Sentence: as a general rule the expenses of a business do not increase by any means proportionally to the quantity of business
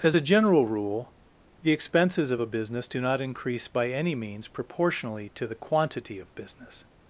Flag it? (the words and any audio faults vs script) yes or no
no